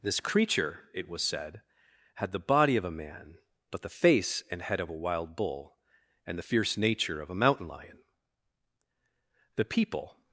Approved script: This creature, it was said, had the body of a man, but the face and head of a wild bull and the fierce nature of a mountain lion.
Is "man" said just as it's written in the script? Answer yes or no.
yes